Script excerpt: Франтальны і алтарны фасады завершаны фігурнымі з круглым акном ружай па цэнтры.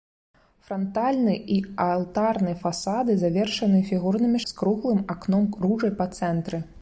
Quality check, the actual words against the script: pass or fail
pass